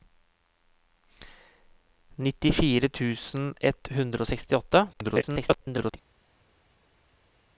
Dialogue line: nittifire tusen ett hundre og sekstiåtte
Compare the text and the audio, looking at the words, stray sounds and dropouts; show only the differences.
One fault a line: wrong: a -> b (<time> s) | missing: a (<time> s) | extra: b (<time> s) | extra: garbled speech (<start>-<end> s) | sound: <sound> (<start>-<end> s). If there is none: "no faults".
extra: garbled speech (4.9-6.0 s)